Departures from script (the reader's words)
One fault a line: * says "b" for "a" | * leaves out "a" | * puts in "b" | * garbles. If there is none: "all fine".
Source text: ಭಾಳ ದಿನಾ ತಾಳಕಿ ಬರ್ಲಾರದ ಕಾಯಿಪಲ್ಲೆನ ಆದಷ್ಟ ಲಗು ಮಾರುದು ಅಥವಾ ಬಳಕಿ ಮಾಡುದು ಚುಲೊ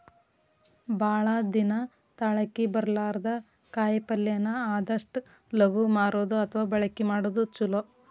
all fine